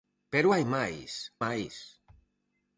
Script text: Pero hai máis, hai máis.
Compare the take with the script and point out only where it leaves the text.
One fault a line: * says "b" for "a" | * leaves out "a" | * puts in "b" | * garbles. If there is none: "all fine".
* leaves out "hai"